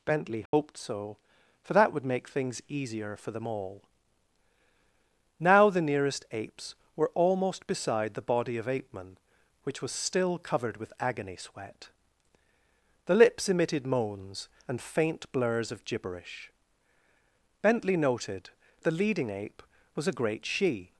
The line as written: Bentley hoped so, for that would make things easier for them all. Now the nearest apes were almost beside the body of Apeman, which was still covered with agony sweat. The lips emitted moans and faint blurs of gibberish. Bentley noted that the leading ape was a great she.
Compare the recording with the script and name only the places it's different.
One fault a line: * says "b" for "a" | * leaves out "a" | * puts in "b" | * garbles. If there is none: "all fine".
* leaves out "that"